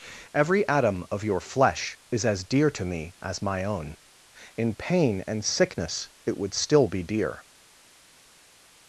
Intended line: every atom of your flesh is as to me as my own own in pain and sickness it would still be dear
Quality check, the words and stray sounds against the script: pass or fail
fail